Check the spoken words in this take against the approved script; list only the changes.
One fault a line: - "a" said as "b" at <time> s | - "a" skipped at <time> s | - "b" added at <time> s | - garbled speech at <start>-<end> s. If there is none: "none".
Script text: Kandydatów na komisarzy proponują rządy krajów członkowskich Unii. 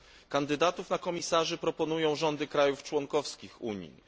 none